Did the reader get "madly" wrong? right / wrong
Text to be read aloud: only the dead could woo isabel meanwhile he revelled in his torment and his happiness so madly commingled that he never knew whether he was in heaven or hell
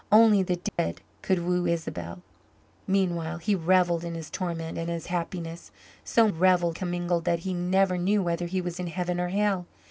wrong